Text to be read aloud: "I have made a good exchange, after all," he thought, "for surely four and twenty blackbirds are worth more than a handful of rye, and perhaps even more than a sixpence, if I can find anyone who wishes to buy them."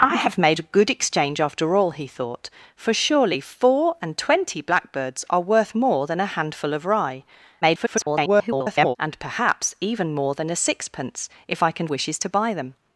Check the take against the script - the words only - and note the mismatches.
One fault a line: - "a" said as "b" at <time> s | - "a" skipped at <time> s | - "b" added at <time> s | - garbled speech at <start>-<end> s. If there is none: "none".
- garbled speech at 7.6-9.0 s
- "find anyone who" skipped at 11.9 s